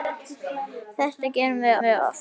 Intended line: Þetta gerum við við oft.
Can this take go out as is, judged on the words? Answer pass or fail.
pass